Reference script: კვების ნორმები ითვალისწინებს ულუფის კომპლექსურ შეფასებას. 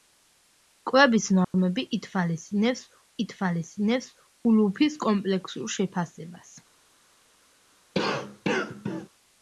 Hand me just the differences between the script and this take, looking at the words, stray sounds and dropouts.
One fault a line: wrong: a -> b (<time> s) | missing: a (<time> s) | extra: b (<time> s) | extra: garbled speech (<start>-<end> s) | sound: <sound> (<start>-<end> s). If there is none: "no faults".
sound: dropout (1.4-1.5 s)
extra: ითვალისწინებს (3.3 s)
sound: cough (7.9-9.1 s)